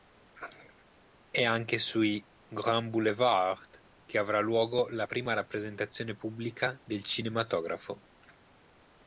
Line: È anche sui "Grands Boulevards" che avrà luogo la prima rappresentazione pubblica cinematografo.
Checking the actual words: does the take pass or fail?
fail